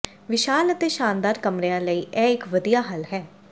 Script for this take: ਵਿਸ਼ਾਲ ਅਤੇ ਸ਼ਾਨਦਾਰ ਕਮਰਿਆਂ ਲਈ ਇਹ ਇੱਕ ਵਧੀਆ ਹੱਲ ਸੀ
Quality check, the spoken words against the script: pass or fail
fail